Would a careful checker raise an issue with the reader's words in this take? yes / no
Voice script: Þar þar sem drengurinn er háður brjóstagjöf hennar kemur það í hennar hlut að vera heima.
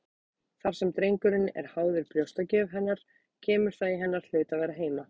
yes